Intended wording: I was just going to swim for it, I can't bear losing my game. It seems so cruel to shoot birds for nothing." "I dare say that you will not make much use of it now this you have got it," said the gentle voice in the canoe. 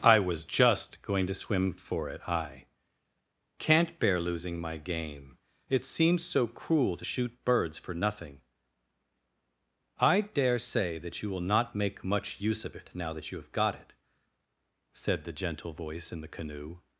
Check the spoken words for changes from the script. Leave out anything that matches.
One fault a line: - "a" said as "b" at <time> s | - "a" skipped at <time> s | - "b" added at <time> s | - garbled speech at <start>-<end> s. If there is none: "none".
- "this" said as "that" at 13.1 s